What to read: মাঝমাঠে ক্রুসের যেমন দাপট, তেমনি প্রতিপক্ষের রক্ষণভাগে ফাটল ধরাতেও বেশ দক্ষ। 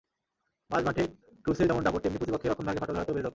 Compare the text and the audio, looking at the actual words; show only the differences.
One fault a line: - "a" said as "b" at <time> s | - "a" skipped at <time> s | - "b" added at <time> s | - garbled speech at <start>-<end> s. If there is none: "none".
none